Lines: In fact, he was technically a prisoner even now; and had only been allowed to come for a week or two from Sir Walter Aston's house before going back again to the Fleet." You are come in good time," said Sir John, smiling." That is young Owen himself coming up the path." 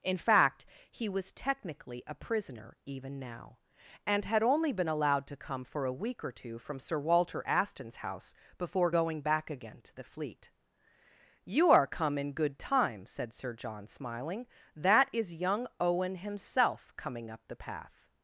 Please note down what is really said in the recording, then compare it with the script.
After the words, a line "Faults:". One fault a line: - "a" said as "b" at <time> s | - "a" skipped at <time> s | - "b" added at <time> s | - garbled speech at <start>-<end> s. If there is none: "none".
In fact, he was technically a prisoner even now; and had only been allowed to come for a week or two from Sir Walter Aston's house before going back again to the Fleet." You are come in good time," said Sir John, smiling." That is young Owen himself coming up the path."
Faults:
none